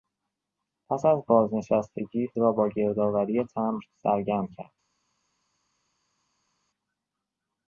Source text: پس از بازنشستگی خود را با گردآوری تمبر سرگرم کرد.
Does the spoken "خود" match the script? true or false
false